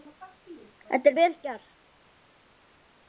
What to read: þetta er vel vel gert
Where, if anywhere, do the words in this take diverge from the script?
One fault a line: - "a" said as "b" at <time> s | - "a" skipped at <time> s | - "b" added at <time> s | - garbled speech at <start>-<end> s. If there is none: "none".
- "vel" skipped at 1.4 s